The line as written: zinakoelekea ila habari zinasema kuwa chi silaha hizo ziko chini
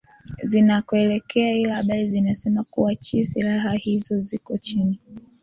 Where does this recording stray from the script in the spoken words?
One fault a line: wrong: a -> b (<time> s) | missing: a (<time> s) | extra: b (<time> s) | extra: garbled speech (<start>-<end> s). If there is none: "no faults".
no faults